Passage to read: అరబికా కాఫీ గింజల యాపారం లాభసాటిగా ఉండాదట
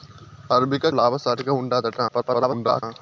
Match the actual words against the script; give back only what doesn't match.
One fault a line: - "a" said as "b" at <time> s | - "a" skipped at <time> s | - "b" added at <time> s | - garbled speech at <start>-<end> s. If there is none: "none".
- "కాఫీ గింజల యాపారం" skipped at 0.9 s
- garbled speech at 2.1-2.8 s